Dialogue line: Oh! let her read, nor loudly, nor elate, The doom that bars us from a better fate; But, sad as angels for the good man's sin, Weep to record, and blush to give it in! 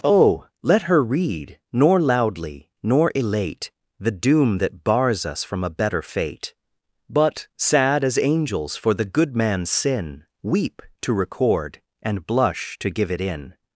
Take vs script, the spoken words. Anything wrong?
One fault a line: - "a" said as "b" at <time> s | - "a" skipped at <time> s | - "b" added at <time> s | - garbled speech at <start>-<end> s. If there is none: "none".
none